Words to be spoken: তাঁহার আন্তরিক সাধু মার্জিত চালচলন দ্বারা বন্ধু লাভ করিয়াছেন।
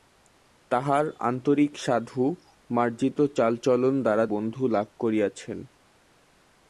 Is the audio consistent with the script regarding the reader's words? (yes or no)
yes